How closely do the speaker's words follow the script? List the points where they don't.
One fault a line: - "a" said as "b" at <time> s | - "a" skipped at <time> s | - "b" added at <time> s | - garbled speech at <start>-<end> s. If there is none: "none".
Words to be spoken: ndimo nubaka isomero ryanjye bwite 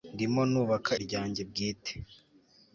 - "isomero" skipped at 0.9 s